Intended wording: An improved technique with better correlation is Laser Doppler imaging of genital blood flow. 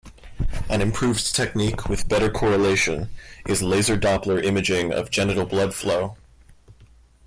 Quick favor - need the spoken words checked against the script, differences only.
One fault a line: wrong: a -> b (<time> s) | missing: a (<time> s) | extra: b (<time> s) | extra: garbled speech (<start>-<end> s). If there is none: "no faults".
no faults